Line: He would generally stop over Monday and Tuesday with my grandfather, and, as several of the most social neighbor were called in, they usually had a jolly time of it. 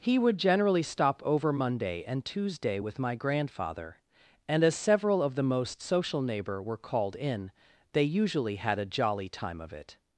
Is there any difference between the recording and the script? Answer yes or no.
no